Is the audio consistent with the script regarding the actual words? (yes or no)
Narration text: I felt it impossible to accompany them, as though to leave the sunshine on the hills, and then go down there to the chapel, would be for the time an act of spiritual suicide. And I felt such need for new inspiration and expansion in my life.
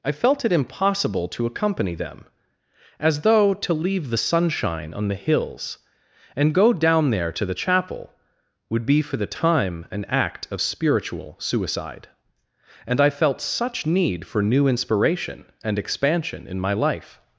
no